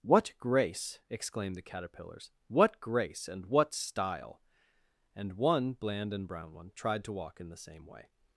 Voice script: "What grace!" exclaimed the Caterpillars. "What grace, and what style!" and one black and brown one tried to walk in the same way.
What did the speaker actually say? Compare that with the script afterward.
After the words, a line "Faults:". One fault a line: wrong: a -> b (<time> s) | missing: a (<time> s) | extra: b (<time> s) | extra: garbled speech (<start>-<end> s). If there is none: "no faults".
"What grace!" exclaimed the Caterpillars. "What grace, and what style!" and one bland and brown one tried to walk in the same way.
Faults:
wrong: black -> bland (5.7 s)